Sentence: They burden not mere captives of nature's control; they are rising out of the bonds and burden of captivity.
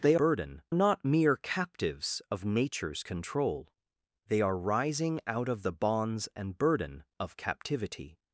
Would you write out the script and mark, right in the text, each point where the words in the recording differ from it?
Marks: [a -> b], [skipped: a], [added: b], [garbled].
They burden not mere captives of nature's control; they are rising out of the bonds and burden of captivity.